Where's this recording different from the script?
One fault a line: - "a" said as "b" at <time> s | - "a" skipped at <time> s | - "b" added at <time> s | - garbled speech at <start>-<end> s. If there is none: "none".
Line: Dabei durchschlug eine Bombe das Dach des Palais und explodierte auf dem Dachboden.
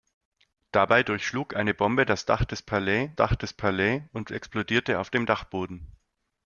- "Dach des Palais" added at 3.2 s